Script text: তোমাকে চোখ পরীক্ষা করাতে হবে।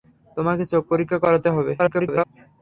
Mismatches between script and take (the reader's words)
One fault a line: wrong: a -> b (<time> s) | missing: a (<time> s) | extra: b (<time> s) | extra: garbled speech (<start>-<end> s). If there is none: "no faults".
extra: garbled speech (1.8-2.2 s)